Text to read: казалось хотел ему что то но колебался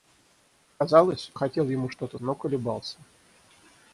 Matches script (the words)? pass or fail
pass